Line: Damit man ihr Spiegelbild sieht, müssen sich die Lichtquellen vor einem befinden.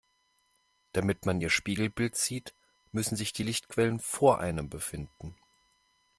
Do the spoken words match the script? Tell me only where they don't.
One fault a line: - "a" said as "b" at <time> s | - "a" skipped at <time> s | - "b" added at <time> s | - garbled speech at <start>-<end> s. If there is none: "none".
none